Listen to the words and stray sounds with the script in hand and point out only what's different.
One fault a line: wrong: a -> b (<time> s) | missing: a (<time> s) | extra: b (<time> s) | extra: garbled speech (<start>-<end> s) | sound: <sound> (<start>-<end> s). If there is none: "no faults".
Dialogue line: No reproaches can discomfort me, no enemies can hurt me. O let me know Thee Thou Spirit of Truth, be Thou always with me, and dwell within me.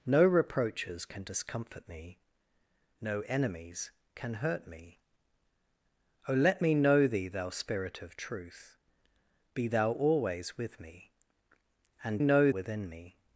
wrong: dwell -> know (12.2 s)